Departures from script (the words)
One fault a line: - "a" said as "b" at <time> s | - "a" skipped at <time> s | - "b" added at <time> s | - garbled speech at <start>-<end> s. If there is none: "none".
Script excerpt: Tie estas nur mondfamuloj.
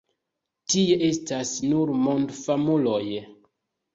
none